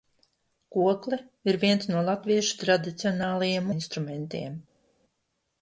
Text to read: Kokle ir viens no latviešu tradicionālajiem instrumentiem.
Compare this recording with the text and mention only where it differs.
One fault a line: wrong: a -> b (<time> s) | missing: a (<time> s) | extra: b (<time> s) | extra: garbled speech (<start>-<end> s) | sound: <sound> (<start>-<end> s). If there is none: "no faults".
no faults